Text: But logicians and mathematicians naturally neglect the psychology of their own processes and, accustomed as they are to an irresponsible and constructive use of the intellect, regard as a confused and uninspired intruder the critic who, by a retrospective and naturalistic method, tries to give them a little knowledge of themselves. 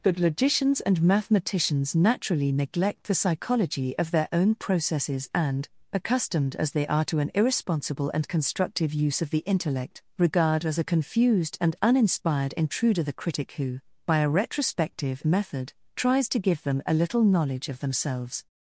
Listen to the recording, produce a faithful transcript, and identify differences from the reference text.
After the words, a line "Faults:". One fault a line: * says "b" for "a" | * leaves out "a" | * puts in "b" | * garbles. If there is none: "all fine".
But logicians and mathematicians naturally neglect the psychology of their own processes and, accustomed as they are to an irresponsible and constructive use of the intellect, regard as a confused and uninspired intruder the critic who, by a retrospective method, tries to give them a little knowledge of themselves.
Faults:
* leaves out "and naturalistic"